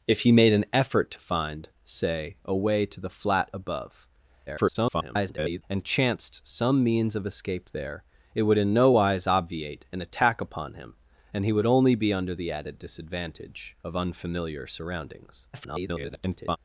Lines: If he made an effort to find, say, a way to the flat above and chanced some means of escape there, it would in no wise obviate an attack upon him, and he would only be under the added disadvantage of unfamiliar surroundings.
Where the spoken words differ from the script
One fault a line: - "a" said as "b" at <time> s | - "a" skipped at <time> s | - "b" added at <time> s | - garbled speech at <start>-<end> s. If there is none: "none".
- garbled speech at 4.5-5.6 s
- garbled speech at 15.5-16.6 s